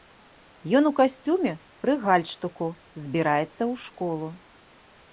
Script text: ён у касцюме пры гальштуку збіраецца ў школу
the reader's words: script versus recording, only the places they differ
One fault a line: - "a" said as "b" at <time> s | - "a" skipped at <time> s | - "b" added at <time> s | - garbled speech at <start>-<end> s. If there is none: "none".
none